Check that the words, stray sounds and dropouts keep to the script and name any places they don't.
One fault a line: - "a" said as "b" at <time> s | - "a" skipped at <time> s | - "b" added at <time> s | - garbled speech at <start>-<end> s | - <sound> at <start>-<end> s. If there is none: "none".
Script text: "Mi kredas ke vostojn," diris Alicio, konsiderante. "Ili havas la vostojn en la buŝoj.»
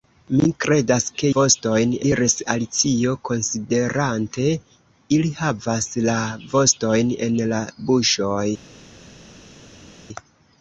none